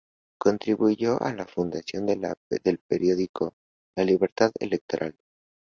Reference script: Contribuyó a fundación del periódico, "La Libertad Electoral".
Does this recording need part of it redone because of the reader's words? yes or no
yes